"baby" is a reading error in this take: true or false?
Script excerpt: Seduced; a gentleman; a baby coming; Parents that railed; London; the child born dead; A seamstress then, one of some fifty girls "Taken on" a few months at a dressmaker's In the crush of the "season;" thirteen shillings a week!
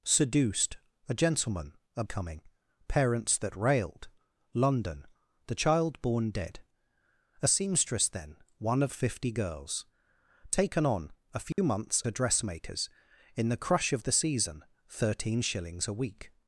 true